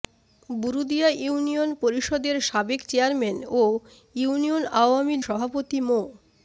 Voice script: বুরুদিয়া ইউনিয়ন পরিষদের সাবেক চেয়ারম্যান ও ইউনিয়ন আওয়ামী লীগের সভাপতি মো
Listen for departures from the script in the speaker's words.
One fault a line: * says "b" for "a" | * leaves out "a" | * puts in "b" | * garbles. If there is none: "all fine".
* leaves out "লীগের"